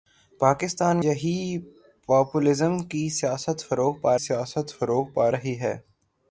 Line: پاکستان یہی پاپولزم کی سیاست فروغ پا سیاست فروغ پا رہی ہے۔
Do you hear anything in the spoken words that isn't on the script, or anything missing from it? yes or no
no